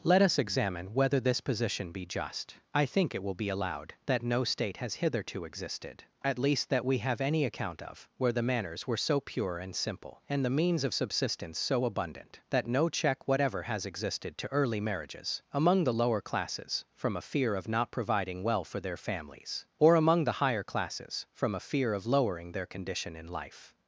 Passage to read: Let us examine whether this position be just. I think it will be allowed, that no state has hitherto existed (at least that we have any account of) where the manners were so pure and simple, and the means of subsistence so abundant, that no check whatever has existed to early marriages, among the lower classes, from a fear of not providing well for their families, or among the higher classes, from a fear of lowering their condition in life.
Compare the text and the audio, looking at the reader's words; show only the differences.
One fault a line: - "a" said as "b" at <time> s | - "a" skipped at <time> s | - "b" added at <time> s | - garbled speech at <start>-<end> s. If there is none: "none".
none